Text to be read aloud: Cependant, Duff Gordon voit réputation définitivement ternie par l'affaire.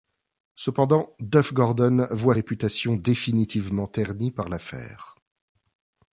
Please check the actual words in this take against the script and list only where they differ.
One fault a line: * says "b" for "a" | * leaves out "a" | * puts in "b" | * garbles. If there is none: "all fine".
all fine